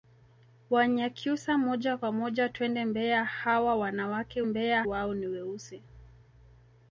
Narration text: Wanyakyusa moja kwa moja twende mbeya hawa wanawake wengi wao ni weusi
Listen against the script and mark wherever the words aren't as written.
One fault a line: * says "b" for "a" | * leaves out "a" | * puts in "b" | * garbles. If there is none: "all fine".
* says "mbeya" for "wengi"